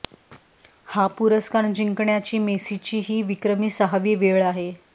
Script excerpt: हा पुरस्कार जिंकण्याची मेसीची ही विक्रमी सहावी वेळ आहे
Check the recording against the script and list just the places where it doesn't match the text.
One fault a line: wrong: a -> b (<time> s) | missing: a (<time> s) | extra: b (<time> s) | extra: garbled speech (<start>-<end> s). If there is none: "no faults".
no faults